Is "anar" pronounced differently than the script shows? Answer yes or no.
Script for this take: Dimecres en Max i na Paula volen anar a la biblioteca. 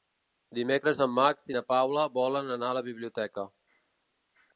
no